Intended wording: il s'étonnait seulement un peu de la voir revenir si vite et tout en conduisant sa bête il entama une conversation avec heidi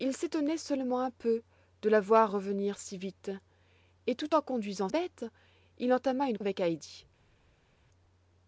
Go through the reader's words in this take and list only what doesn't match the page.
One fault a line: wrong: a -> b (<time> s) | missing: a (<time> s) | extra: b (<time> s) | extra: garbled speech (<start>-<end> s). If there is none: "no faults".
missing: sa (4.9 s)
missing: conversation (6.4 s)